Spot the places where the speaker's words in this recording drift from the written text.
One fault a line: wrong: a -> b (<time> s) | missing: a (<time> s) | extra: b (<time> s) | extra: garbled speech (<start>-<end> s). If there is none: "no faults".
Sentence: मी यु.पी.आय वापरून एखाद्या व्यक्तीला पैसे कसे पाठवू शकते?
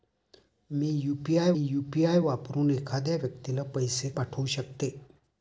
extra: यु.पी.आय (1.6 s)
missing: कसे (4.1 s)